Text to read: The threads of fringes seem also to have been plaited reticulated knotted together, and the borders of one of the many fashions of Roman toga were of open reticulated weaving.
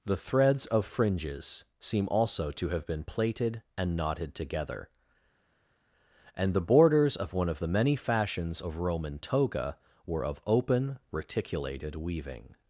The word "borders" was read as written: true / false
true